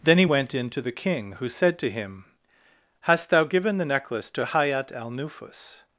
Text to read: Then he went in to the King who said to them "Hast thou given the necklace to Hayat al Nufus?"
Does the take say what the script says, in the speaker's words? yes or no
no